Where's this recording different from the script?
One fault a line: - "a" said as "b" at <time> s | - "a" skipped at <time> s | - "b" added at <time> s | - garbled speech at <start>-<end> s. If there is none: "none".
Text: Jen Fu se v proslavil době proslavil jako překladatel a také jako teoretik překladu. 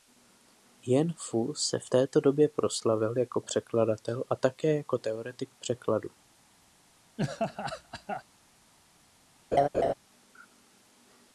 - "proslavil" said as "této" at 1.8 s